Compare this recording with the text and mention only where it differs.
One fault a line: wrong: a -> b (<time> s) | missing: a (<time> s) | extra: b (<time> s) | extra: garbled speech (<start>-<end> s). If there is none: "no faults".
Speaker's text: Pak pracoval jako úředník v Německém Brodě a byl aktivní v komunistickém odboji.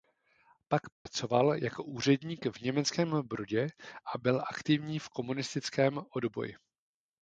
no faults